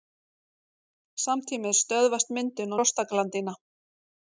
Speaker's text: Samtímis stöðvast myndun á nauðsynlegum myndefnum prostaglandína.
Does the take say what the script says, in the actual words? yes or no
no